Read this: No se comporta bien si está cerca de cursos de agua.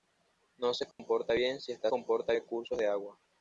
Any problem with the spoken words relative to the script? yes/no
yes